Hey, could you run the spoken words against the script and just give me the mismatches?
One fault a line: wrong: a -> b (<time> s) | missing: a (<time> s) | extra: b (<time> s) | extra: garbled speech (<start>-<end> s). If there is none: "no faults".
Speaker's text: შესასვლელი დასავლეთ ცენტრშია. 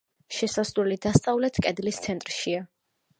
extra: კედლის (1.6 s)